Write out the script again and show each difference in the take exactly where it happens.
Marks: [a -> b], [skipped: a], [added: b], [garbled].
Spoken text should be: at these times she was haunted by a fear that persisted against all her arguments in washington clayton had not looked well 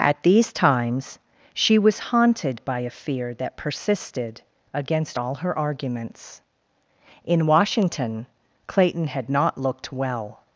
at these times she was haunted by a fear that persisted against all her arguments in washington clayton had not looked well